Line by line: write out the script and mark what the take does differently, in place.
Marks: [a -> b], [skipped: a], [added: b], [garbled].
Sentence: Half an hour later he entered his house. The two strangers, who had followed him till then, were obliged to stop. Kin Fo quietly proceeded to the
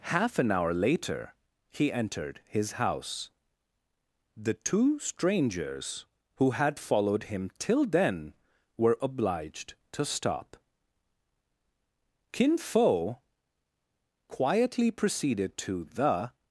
Half an hour later he entered his house. The two strangers, who had followed him till then, were obliged to stop. Kin Fo quietly proceeded to the